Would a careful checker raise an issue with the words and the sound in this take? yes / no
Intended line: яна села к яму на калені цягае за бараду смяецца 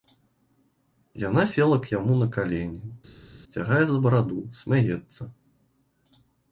no